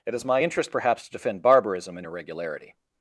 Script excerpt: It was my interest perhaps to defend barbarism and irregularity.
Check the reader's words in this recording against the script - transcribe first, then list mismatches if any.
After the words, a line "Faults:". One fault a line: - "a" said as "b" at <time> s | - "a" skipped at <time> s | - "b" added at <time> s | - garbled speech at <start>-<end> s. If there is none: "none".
It is my interest perhaps to defend barbarism and irregularity.
Faults:
- "was" said as "is" at 0.1 s